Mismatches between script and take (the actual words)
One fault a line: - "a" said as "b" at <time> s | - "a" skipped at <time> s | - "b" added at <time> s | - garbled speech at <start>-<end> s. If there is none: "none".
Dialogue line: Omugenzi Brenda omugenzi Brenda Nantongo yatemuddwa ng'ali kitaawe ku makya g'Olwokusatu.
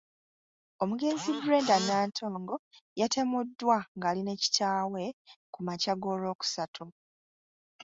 - "omugenzi Brenda" skipped at 1.8 s
- "ne" added at 4.2 s